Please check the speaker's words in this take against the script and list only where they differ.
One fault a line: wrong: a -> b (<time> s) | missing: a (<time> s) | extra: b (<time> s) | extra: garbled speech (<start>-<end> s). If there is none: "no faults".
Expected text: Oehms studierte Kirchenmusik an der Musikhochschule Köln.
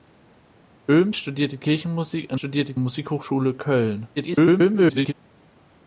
wrong: der -> studierte (2.3 s)
extra: garbled speech (4.2-5.1 s)